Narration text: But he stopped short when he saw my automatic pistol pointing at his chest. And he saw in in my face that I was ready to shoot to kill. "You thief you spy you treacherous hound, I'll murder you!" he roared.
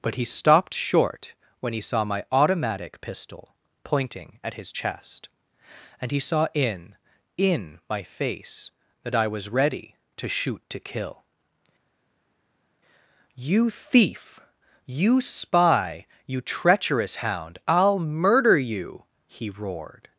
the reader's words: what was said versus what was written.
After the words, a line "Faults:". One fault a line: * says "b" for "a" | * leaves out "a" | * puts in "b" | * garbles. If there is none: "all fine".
But he stopped short when he saw my automatic pistol pointing at his chest. And he saw in in my face that I was ready to shoot to kill. "You thief you spy you treacherous hound, I'll murder you!" he roared.
Faults:
all fine